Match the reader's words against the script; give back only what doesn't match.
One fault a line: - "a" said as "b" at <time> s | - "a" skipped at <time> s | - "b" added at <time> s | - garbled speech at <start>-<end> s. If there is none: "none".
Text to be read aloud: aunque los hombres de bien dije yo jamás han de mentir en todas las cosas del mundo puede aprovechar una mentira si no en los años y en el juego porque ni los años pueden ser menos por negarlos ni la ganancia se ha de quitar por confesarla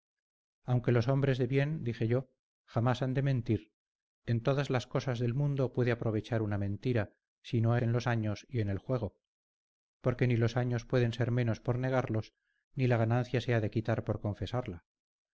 none